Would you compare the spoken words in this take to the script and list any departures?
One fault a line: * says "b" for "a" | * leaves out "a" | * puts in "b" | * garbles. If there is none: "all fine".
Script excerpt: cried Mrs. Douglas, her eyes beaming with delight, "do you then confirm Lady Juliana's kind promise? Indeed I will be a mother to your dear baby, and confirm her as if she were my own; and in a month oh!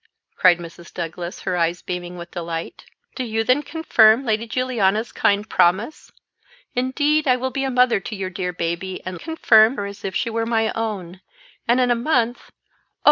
all fine